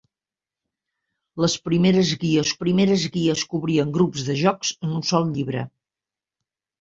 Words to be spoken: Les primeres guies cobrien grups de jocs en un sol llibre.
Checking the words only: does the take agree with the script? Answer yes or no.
no